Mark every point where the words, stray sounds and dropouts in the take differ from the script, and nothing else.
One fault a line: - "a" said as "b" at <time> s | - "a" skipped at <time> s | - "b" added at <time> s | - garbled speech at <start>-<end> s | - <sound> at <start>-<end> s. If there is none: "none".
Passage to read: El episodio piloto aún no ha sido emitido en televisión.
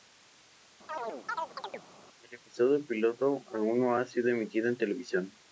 - chirp at 0.9-1.8 s